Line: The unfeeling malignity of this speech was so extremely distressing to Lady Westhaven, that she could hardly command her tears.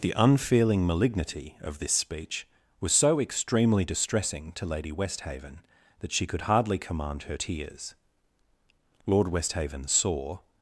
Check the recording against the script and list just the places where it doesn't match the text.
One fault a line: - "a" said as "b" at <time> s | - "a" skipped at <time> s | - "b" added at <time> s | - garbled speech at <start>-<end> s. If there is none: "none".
- "Lord Westhaven saw" added at 9.0 s